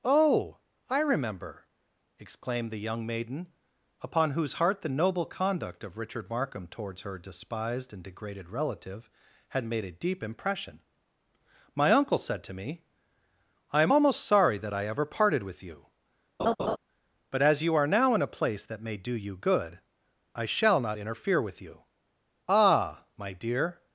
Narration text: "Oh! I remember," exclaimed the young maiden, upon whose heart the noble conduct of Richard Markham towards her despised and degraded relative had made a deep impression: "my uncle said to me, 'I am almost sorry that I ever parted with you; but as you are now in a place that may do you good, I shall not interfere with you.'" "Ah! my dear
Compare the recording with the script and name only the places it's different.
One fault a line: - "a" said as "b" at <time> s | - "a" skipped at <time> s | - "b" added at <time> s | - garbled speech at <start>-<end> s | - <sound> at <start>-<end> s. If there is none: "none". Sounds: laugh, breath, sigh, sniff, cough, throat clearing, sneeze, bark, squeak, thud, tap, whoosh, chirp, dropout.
- laugh at 16.4-16.8 s